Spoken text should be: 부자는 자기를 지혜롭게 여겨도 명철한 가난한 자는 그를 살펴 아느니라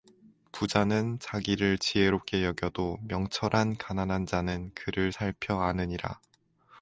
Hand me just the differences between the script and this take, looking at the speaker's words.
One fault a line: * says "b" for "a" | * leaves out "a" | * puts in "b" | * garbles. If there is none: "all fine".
all fine